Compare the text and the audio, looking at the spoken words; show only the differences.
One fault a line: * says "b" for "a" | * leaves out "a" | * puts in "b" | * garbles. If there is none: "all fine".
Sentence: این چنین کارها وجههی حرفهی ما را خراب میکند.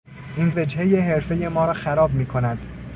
* leaves out "چنین کارها"